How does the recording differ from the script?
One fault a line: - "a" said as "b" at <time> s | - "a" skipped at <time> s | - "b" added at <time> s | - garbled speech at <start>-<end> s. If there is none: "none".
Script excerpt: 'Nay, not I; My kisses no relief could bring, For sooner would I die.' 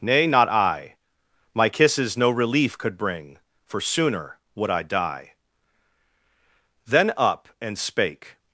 - "Then up and spake" added at 6.9 s